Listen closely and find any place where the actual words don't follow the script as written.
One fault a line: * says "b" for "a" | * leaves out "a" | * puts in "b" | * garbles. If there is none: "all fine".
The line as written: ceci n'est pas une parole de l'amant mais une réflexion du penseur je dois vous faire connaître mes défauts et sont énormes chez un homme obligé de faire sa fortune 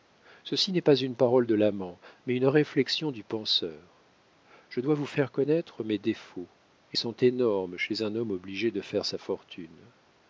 all fine